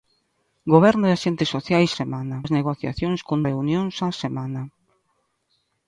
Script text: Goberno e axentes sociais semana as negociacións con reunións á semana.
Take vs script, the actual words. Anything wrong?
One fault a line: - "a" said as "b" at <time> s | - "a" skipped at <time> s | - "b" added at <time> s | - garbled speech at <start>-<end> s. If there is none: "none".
none